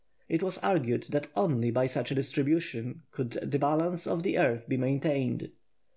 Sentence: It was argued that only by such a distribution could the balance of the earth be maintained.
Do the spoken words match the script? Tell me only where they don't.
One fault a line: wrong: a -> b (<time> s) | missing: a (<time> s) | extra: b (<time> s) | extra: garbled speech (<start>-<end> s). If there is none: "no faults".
no faults